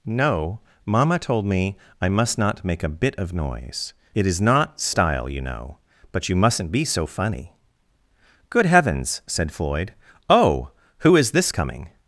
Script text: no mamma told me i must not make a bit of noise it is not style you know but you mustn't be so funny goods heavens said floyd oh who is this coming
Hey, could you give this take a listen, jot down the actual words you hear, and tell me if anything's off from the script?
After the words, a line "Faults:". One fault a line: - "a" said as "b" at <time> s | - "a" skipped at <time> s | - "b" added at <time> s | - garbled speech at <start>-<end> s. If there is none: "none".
no mamma told me i must not make a bit of noise it is not style you know but you mustn't be so funny good heavens said floyd oh who is this coming
Faults:
- "goods" said as "good" at 8.5 s